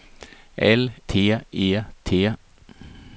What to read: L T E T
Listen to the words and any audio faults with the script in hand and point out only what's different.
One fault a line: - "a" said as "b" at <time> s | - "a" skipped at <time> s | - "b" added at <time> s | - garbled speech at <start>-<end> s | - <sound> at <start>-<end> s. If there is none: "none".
none